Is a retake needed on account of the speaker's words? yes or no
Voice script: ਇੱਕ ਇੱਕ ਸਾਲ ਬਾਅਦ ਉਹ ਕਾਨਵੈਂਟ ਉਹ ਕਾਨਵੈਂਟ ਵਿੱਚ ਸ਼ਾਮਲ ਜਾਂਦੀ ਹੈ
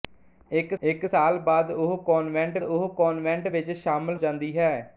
no